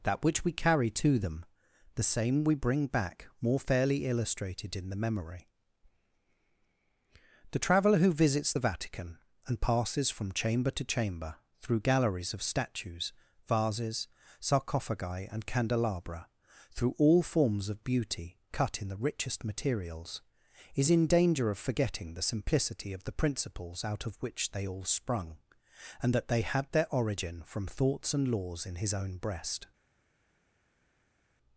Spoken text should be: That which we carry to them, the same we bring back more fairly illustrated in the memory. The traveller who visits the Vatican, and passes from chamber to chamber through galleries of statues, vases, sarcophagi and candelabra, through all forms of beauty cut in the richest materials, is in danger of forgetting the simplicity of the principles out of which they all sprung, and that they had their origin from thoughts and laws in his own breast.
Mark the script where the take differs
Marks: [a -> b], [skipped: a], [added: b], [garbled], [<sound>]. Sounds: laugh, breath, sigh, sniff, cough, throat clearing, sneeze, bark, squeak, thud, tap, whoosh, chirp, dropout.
That which we carry to them, the same we bring back more fairly illustrated in the memory. The traveller who visits the Vatican, and passes from chamber to chamber through galleries of statues, vases, sarcophagi and candelabra, through all forms of beauty cut in the richest materials, is in danger of forgetting the simplicity of the principles out of which they all sprung, and that they had their origin from thoughts and laws in his own breast.